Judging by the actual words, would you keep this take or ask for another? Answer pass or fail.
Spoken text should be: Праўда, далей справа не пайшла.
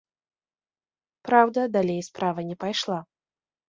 pass